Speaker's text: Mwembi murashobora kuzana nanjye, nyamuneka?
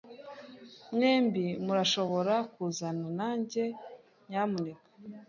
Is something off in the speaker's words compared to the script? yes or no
no